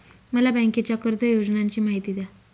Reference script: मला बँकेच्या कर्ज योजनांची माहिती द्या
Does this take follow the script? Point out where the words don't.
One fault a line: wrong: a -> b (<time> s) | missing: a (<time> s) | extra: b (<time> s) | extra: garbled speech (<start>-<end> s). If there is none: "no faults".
no faults